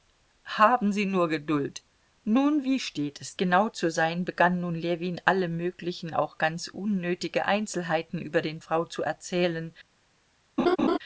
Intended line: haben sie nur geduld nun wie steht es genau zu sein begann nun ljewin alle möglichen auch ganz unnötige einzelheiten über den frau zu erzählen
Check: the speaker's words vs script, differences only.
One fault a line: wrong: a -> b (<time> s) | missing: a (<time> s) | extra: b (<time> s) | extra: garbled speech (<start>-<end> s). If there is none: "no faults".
no faults